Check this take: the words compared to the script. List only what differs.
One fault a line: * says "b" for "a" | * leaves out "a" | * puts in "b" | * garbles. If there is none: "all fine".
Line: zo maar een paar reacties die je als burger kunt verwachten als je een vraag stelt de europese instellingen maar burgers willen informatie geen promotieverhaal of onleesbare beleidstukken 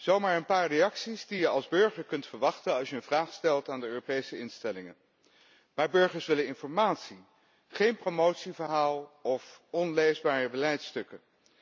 * puts in "aan"